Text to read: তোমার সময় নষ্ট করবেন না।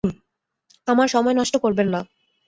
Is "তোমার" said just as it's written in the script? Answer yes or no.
no